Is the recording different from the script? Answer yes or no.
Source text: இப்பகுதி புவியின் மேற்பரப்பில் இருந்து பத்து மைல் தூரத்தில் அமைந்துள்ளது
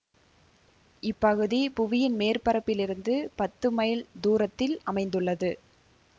no